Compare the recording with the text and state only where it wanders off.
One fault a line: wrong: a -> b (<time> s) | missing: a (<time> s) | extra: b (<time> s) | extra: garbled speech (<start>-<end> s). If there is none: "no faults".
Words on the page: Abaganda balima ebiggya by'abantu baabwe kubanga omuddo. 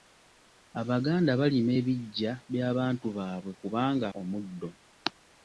no faults